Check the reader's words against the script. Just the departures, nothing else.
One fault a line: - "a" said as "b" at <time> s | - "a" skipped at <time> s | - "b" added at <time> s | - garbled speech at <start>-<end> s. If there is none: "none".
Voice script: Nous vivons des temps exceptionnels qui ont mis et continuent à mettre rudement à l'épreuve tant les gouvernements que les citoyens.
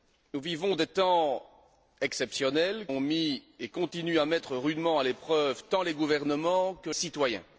- "qui" skipped at 2.9 s
- "les" skipped at 6.9 s